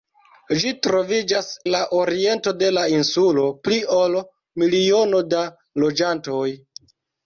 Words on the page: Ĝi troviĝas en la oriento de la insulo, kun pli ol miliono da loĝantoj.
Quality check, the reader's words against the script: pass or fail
fail